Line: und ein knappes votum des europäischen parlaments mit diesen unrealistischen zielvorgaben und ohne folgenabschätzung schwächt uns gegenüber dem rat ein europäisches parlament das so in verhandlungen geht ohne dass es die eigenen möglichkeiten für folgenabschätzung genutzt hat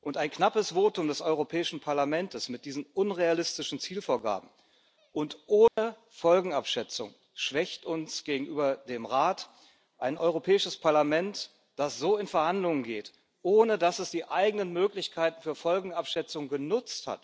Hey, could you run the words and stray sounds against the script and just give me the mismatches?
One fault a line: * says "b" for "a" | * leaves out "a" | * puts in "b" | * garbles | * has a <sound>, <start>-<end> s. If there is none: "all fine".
* has a dropout, 5.7-5.8 s